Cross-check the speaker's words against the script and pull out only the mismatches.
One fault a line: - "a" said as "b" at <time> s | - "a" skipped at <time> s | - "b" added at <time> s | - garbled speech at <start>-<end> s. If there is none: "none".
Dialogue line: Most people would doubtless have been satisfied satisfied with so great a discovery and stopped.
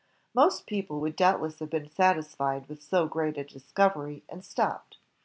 - "satisfied" skipped at 2.7 s